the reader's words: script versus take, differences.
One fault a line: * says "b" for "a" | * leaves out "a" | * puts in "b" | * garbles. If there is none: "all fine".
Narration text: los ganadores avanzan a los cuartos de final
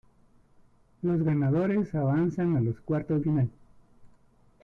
* leaves out "de"